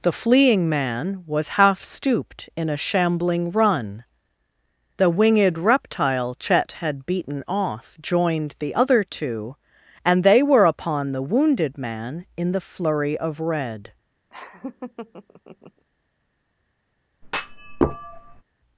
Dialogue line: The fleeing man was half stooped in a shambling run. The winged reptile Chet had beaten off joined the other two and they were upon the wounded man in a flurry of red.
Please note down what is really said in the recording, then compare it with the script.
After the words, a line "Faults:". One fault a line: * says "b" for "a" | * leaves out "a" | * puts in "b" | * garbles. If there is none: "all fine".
The fleeing man was half stooped in a shambling run. The winged reptile Chet had beaten off joined the other two and they were upon the wounded man in the flurry of red.
Faults:
* says "the" for "a"